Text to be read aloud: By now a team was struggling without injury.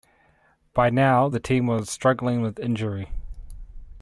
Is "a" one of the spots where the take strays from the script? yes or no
yes